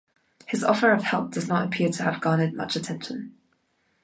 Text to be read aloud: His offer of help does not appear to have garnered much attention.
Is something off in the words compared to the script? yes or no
no